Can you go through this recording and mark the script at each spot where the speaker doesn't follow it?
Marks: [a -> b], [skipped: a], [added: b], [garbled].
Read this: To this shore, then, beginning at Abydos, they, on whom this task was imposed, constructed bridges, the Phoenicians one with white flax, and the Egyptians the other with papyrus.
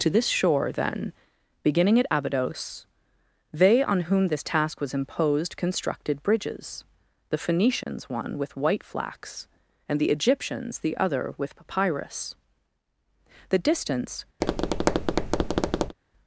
To this shore, then, beginning at Abydos, they, on whom this task was imposed, constructed bridges, the Phoenicians one with white flax, and the Egyptians the other with papyrus. [added: The distance]